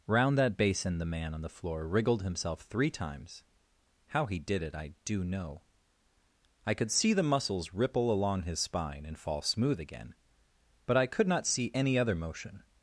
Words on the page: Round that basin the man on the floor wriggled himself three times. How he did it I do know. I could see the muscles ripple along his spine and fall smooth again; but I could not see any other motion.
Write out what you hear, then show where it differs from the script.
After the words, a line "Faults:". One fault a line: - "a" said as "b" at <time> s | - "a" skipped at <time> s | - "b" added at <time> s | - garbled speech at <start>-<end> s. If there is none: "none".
Round that basin the man on the floor wriggled himself three times. How he did it I do know. I could see the muscles ripple along his spine and fall smooth again; but I could not see any other motion.
Faults:
none